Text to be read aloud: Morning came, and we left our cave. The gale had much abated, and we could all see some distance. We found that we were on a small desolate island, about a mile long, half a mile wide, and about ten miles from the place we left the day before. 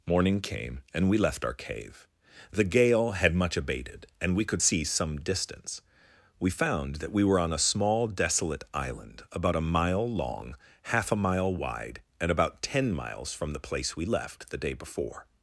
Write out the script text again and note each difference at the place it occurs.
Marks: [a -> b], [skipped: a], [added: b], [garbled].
Morning came, and we left our cave. The gale had much abated, and we could [skipped: all] see some distance. We found that we were on a small desolate island, about a mile long, half a mile wide, and about ten miles from the place we left the day before.